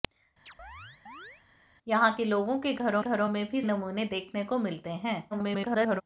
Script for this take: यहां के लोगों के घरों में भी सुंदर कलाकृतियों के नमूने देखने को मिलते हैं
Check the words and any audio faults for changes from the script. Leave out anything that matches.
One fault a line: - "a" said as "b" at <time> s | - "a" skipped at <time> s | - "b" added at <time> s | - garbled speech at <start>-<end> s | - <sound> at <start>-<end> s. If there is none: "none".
- chirp at 0.5-1.4 s
- "घरों" added at 3.0 s
- "सुंदर कलाकृतियों के" skipped at 3.6 s
- garbled speech at 5.3-6.0 s